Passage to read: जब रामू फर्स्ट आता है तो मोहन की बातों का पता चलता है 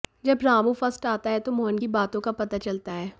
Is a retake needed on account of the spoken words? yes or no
no